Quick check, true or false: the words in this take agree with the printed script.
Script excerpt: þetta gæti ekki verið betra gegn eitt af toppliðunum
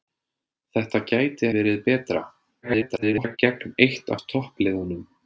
false